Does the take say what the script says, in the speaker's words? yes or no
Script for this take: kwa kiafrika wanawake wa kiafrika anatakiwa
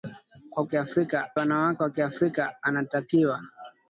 yes